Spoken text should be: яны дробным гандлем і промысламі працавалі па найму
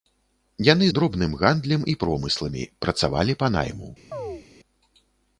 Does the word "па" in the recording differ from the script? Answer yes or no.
no